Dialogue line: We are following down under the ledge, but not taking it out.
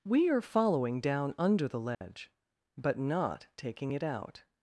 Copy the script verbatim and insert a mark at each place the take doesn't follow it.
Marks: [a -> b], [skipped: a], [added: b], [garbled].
We are following down under the ledge, but not taking it out.